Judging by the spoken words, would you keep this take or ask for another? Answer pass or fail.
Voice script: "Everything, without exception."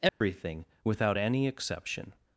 fail